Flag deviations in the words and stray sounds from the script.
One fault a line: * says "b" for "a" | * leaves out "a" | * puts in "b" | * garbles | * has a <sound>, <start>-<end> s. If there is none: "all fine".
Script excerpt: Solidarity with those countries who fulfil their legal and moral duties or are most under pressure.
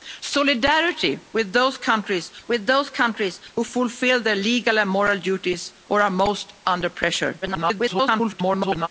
* puts in "with those countries"
* garbles